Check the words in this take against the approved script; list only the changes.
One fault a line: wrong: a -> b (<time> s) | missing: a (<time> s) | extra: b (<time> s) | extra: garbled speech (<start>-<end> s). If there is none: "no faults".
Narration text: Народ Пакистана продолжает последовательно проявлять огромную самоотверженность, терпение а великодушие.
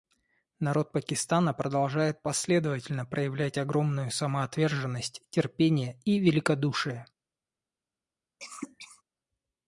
wrong: а -> и (6.0 s)